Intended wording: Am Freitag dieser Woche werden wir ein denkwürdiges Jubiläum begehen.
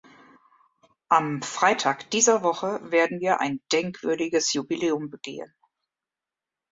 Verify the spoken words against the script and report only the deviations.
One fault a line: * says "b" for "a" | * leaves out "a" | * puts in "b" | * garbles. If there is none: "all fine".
all fine